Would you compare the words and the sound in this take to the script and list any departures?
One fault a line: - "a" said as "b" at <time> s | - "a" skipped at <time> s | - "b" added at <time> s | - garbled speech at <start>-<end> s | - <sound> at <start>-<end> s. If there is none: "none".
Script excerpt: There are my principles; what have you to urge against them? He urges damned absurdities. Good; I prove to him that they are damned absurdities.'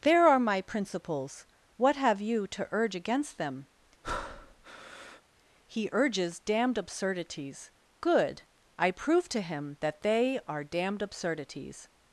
- breath at 4.0-5.2 s